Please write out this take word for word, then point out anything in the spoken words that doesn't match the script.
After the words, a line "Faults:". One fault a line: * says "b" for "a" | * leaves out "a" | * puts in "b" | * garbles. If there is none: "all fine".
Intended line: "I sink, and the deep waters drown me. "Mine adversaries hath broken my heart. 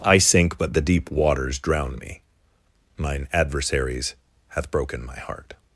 "I sink, but the deep waters drown me. "Mine adversaries hath broken my heart.
Faults:
* says "but" for "and"